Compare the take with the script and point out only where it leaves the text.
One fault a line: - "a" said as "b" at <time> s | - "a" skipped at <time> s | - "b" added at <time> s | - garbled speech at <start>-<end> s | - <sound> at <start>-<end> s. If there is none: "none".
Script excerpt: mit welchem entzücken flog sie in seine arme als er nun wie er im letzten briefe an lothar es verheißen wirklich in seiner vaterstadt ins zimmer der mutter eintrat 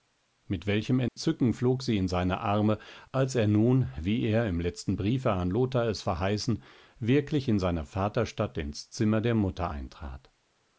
- dropout at 1.1-1.2 s